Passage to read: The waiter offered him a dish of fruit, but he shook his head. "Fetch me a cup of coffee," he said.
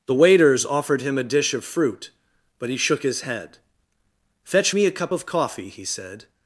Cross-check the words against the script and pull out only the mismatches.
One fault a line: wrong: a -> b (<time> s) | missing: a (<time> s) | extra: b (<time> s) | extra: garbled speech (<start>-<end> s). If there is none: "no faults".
wrong: waiter -> waiters (0.1 s)